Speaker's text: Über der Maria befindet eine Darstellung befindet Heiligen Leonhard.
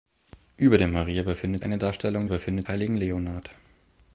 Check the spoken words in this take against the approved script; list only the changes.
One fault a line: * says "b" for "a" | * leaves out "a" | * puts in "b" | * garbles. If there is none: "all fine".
all fine